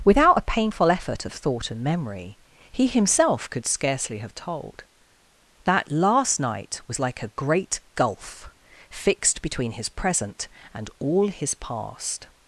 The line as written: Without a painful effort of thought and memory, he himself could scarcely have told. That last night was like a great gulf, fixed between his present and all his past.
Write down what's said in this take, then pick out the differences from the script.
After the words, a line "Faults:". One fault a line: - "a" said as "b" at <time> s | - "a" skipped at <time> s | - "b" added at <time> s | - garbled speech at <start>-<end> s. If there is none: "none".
Without a painful effort of thought and memory, he himself could scarcely have told. That last night was like a great gulf, fixed between his present and all his past.
Faults:
none